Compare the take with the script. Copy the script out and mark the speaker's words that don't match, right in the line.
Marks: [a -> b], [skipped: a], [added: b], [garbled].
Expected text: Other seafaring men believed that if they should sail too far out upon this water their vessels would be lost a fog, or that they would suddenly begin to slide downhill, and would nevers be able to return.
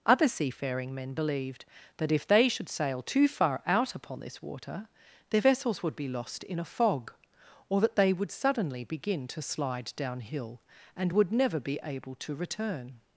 Other seafaring men believed that if they should sail too far out upon this water their vessels would be lost [added: in] a fog, or that they would suddenly begin to slide downhill, and would [nevers -> never] be able to return.